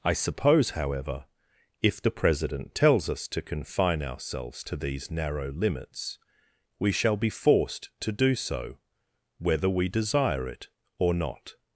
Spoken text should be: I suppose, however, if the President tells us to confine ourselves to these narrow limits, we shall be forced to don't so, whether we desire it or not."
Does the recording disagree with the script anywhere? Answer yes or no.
yes